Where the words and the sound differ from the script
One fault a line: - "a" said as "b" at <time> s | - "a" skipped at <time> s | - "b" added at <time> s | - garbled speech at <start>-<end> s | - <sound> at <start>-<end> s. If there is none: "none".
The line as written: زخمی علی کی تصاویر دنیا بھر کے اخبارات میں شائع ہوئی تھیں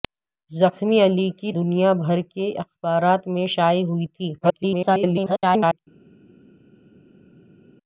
- "تصاویر" skipped at 1.5 s
- garbled speech at 4.4-5.8 s